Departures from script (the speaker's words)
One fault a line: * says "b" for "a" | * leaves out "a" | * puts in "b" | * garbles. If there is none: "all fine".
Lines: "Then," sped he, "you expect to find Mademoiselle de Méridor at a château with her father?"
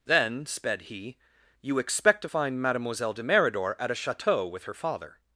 all fine